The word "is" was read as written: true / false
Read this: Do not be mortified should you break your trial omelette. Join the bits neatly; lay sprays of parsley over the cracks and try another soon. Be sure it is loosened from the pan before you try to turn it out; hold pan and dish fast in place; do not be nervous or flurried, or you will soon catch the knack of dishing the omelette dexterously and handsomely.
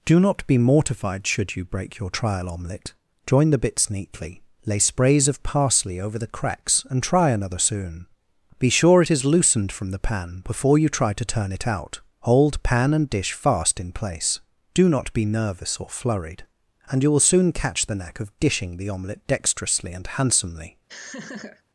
true